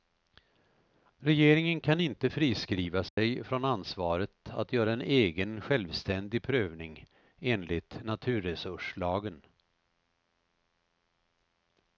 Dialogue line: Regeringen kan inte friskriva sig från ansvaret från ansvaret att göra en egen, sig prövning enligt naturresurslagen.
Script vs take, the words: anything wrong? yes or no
yes